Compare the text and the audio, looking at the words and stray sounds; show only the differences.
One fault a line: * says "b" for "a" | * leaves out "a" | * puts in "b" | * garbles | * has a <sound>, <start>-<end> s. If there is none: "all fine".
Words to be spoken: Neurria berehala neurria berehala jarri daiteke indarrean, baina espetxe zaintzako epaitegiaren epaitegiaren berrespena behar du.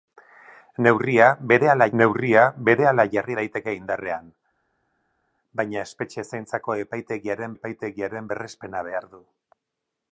all fine